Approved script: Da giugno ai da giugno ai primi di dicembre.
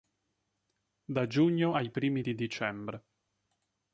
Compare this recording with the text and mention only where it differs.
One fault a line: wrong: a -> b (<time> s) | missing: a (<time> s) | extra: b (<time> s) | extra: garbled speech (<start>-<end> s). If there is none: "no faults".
missing: da giugno ai (1.9 s)